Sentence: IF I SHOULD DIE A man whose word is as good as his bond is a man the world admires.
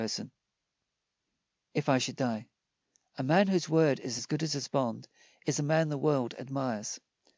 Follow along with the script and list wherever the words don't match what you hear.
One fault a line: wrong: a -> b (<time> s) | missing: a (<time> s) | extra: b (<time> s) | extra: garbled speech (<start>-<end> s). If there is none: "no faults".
no faults